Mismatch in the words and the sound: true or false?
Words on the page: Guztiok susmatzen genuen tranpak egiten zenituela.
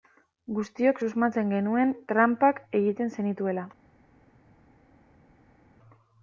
false